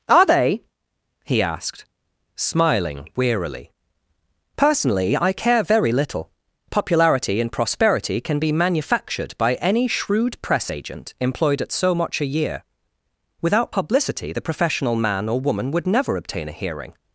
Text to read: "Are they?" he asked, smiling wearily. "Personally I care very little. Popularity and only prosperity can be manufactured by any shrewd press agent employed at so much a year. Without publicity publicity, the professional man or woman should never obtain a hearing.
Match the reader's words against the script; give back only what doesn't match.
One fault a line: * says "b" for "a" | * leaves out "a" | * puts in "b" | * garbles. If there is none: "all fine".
* leaves out "only"
* leaves out "publicity"
* says "would" for "should"